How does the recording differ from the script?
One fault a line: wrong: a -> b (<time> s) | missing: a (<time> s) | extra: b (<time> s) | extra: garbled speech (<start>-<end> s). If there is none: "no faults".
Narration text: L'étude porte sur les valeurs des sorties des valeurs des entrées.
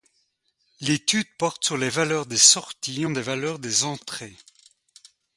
no faults